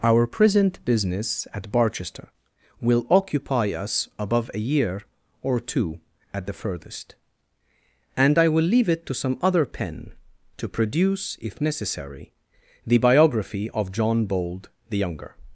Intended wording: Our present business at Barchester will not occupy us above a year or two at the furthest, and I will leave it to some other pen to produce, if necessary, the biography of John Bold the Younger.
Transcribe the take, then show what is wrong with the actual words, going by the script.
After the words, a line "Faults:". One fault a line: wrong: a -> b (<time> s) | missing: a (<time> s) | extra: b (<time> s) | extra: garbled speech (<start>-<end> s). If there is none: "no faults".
Our present business at Barchester will occupy us above a year or two at the furthest, and I will leave it to some other pen to produce, if necessary, the biography of John Bold the Younger.
Faults:
missing: not (3.0 s)